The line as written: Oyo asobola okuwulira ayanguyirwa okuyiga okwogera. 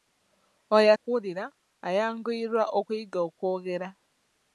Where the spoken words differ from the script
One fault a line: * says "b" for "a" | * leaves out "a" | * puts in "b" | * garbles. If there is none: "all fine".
* leaves out "asobola"